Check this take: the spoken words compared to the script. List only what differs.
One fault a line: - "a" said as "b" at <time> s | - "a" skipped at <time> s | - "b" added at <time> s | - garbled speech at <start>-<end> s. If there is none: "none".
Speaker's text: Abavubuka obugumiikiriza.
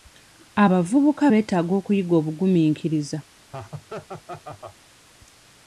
- "beetaaga okuyiga" added at 1.3 s